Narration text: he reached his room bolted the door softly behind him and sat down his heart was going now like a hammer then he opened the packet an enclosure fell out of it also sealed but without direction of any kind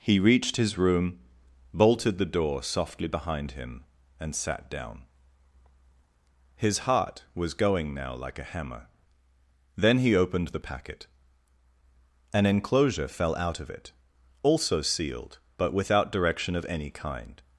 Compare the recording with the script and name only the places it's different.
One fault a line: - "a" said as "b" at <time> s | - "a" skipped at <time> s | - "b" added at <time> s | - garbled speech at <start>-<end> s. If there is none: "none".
none